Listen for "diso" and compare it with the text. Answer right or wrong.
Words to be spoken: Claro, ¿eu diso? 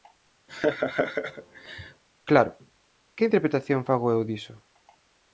right